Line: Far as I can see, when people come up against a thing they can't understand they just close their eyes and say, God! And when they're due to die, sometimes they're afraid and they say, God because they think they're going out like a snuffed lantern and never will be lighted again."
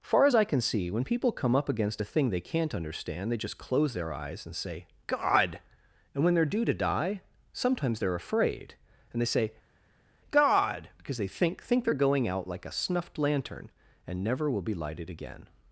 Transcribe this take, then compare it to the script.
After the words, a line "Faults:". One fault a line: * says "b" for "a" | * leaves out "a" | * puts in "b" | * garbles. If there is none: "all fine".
Far as I can see, when people come up against a thing they can't understand they just close their eyes and say, God! And when they're due to die, sometimes they're afraid and they say, God because they think think they're going out like a snuffed lantern and never will be lighted again."
Faults:
* puts in "think"